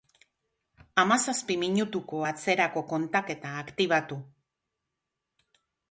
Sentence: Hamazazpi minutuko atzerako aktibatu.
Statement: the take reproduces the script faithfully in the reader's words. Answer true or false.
false